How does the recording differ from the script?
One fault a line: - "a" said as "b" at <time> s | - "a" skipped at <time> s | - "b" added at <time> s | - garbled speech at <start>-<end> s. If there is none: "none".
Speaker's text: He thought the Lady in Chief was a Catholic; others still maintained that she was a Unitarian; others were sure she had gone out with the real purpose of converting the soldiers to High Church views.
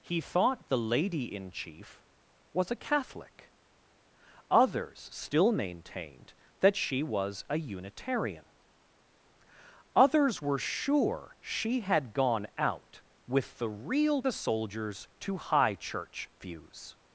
- "purpose of converting" skipped at 14.2 s